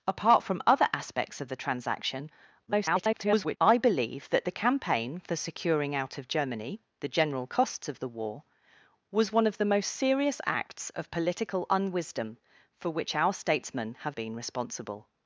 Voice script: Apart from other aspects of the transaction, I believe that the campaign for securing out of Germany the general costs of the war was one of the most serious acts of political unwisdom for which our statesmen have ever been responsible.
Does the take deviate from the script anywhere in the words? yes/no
yes